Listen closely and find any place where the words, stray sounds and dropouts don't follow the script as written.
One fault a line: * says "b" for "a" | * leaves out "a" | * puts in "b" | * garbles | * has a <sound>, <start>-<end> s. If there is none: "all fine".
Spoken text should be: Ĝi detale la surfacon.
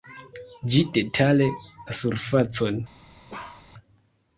* has a bark, 3.3-3.7 s